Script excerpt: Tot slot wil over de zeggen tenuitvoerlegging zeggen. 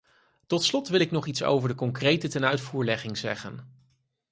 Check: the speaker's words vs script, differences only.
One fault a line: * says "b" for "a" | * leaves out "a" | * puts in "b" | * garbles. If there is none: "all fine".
* puts in "ik nog iets"
* says "concrete" for "zeggen"